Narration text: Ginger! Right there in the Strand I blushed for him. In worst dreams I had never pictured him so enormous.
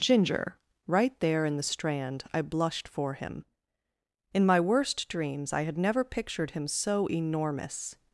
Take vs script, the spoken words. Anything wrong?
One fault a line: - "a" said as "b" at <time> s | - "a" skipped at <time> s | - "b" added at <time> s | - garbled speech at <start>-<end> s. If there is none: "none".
- "my" added at 4.5 s